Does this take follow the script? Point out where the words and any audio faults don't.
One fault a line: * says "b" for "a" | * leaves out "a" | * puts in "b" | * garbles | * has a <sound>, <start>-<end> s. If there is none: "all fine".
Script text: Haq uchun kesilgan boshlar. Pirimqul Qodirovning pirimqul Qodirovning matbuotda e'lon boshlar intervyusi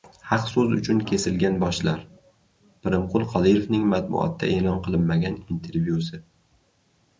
* puts in "so‘z"
* leaves out "pirimqul Qodirovning"
* says "qilinmagan" for "boshlar"